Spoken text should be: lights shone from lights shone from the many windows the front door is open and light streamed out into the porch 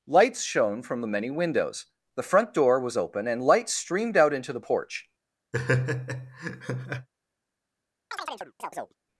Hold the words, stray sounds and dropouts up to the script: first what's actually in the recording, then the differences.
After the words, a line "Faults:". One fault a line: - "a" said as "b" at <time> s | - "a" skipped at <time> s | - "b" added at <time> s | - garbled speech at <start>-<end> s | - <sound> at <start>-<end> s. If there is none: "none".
lights shone from the many windows the front door was open and light streamed out into the porch
Faults:
- "lights shone from" skipped at 1.0 s
- "is" said as "was" at 2.8 s
- laugh at 5.5-7.1 s
- chirp at 8.1-9.0 s